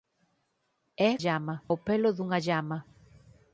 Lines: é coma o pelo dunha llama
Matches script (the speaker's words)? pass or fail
fail